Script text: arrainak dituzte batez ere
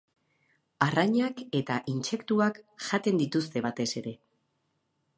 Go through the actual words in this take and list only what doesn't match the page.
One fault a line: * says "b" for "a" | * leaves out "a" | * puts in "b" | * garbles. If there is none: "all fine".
* puts in "eta intsektuak jaten"